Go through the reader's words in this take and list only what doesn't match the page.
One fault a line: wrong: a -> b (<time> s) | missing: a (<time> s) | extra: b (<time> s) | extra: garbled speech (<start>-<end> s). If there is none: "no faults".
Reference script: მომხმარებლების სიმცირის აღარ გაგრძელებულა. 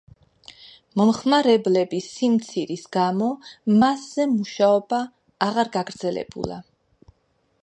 extra: გამო მასზე მუშაობა (3.0 s)